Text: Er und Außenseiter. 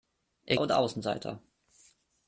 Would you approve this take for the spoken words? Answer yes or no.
yes